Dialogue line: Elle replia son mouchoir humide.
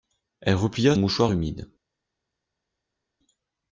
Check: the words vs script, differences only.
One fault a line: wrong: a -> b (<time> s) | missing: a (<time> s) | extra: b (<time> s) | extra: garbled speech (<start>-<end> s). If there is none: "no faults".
missing: son (0.9 s)